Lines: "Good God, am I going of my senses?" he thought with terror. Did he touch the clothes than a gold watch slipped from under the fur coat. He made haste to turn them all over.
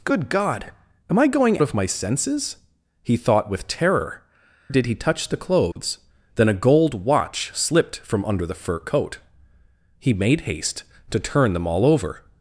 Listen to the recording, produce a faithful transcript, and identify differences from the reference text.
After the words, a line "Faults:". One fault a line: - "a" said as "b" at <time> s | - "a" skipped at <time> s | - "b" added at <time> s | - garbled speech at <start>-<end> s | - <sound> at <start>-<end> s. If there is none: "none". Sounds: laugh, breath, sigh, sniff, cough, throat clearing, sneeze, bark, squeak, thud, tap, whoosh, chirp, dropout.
"Good God, am I going of my senses?" he thought with terror. Did he touch the clothes than a gold watch slipped from under the fur coat. He made haste to turn them all over.
Faults:
- dropout at 5.7-5.8 s